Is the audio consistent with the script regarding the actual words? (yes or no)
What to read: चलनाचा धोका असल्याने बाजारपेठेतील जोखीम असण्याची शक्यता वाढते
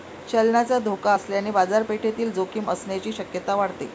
yes